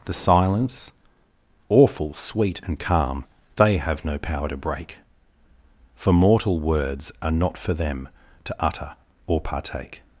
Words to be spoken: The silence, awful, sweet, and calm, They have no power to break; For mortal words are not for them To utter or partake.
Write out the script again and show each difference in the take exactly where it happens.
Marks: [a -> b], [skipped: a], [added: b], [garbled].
The silence, awful, sweet, and calm, They have no power to break; For mortal words are not for them To utter or partake.